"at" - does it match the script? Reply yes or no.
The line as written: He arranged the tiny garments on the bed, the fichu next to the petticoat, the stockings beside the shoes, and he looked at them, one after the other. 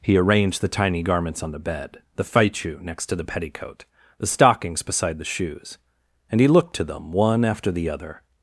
no